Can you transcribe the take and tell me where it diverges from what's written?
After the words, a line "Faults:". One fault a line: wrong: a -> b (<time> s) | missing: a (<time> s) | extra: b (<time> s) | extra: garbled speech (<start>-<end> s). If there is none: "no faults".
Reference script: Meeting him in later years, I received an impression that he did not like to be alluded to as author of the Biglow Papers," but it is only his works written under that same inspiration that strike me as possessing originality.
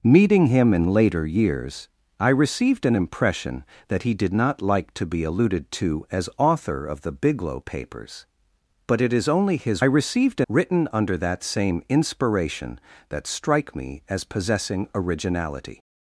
Meeting him in later years, I received an impression that he did not like to be alluded to as author of the Biglow Papers," but it is only his received written under that same inspiration that strike me as possessing originality.
Faults:
wrong: works -> received (9.8 s)